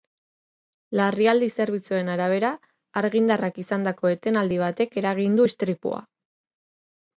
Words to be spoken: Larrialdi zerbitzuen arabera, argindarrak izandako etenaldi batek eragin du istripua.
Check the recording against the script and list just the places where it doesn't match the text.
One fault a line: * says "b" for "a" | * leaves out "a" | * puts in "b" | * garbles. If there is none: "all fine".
all fine